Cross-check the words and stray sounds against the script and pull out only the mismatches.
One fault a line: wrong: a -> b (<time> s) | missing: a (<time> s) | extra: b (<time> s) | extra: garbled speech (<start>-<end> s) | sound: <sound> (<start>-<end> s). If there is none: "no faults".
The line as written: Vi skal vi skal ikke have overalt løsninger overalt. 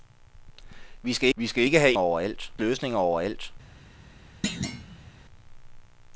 sound: thud (4.4-5.1 s)